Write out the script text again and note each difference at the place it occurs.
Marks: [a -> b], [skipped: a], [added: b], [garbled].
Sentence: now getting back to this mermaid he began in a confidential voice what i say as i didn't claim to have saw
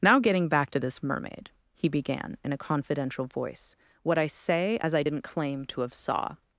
now getting back to this mermaid he began in a confidential voice what i say as i didn't claim to have saw